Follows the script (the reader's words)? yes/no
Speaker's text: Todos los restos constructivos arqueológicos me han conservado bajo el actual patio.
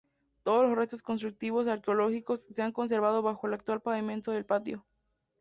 no